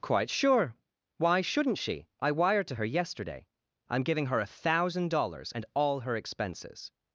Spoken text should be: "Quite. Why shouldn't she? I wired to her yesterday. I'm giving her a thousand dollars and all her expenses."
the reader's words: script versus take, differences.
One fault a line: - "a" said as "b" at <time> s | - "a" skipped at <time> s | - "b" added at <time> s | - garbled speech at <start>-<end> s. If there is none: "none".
- "sure" added at 0.3 s